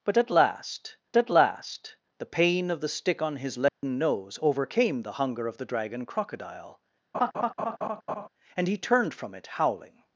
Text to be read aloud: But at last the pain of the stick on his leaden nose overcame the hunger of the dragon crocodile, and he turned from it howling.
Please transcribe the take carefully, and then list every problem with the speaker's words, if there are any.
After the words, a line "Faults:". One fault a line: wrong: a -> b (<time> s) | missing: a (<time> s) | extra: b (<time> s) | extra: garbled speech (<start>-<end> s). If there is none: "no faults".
But at last at last the pain of the stick on his leaden nose overcame the hunger of the dragon crocodile, and he turned from it howling.
Faults:
extra: at last (1.2 s)